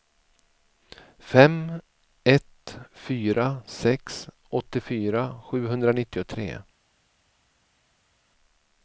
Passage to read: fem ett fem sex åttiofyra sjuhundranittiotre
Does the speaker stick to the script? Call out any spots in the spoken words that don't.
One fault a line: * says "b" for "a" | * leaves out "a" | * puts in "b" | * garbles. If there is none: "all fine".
* says "fyra" for "fem"